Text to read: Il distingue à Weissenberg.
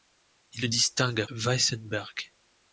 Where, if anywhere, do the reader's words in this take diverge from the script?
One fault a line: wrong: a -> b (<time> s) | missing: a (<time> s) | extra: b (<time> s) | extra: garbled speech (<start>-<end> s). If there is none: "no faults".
no faults